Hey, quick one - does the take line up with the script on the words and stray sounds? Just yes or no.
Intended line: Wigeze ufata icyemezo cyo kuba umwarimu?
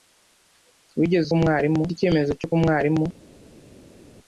no